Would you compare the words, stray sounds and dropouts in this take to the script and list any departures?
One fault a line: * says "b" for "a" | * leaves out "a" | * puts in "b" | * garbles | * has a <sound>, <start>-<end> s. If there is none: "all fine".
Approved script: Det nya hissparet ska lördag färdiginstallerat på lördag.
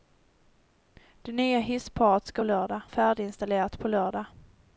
all fine